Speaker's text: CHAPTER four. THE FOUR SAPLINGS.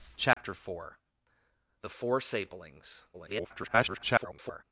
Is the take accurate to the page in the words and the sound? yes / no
no